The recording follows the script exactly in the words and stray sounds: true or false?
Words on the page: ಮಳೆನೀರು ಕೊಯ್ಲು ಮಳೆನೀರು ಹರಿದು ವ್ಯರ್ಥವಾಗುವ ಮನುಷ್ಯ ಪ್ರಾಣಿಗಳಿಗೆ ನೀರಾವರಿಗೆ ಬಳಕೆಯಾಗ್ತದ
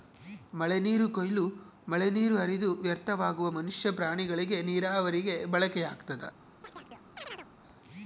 false